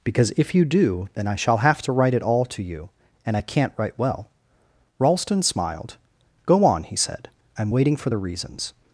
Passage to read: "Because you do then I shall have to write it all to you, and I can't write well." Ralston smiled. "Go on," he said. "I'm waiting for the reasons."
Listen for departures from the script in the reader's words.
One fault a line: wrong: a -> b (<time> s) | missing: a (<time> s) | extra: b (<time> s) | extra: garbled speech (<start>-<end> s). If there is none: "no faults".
extra: if (0.3 s)